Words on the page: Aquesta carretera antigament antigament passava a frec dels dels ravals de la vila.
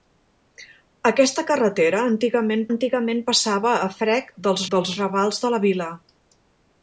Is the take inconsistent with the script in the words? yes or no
no